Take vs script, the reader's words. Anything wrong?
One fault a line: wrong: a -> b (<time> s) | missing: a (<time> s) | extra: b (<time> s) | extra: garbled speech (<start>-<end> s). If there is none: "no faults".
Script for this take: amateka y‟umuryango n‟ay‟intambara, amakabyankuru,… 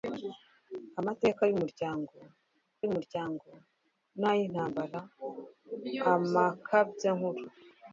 extra: y‟umuryango (2.8 s)